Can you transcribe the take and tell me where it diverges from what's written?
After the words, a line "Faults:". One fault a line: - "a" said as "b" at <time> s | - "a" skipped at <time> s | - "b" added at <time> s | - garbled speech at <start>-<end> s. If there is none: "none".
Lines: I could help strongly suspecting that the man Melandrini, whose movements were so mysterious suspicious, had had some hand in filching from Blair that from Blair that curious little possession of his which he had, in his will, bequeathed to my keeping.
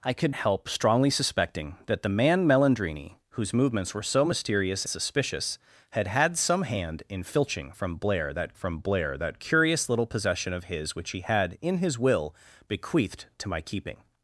I could help strongly suspecting that the man Melandrini, whose movements were so mysterious suspicious, had had some hand in filching from Blair that from Blair that curious little possession of his which he had, in his will, bequeathed to my keeping.
Faults:
none